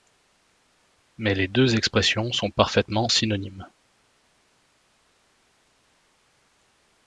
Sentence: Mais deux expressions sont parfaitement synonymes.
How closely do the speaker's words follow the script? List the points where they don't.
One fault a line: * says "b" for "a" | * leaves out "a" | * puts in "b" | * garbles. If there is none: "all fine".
* puts in "les"